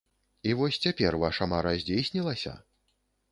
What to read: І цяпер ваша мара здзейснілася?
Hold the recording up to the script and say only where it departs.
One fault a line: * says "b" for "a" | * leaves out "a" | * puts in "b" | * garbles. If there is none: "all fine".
* puts in "вось"